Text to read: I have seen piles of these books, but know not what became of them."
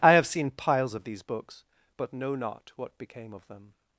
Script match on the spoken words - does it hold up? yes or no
yes